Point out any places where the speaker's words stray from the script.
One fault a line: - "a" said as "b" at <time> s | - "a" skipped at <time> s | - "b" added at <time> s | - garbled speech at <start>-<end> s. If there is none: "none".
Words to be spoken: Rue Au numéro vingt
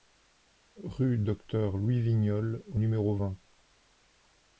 - "Docteur Louis Vignolles" added at 1.2 s